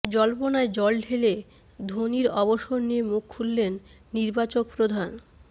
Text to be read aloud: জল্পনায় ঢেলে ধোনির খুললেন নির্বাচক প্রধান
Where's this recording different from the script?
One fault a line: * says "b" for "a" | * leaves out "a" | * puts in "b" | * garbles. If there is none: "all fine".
* puts in "জল"
* puts in "অবসর নিয়ে মুখ"